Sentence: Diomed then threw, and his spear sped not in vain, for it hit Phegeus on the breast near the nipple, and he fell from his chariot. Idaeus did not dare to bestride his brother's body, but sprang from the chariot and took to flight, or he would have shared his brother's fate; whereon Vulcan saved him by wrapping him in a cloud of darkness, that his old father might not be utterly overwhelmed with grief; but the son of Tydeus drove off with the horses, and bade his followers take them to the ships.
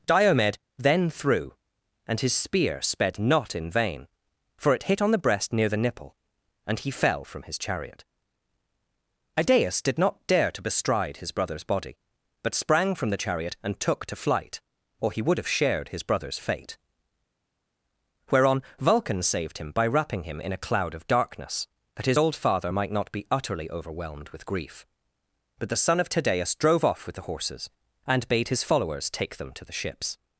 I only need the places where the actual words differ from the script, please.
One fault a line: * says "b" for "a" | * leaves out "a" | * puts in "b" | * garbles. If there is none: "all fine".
* leaves out "Phegeus"